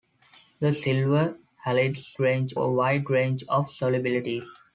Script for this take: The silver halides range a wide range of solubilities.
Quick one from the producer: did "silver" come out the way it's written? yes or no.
yes